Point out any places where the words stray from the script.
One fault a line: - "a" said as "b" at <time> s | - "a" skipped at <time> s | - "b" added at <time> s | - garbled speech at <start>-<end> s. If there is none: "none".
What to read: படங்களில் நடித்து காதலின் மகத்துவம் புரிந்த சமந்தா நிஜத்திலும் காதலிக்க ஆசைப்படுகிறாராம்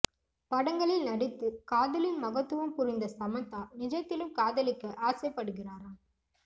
none